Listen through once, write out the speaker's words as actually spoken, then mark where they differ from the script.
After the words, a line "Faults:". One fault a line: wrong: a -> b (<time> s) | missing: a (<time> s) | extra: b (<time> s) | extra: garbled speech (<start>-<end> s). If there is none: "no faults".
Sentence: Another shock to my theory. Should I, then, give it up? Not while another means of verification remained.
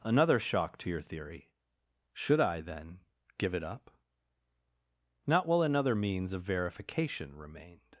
Another shock to your theory. Should I, then, give it up? Not while another means of verification remained.
Faults:
wrong: my -> your (0.9 s)